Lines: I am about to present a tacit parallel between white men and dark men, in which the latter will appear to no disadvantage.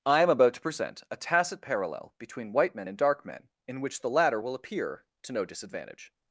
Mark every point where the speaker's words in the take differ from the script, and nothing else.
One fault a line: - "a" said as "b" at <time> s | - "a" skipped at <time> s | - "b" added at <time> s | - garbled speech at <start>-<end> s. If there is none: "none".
none